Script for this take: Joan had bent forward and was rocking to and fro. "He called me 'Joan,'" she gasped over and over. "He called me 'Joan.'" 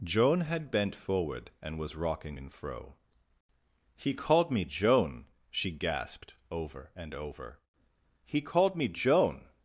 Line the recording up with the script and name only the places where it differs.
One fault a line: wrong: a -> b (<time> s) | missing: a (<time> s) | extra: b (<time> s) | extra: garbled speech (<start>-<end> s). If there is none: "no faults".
missing: to (2.4 s)